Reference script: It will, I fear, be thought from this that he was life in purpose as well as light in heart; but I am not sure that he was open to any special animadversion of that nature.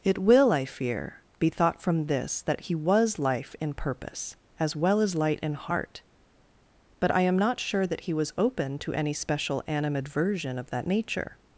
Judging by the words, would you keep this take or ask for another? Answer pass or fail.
pass